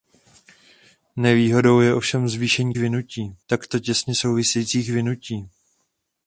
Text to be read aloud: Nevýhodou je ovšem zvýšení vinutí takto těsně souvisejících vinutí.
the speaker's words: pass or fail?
pass